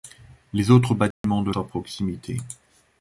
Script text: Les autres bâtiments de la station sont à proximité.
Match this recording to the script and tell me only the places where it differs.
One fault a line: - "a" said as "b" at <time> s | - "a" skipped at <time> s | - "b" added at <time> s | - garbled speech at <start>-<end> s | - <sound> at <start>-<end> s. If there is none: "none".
- dropout at 1.1-1.2 s
- "la station sont" skipped at 1.5 s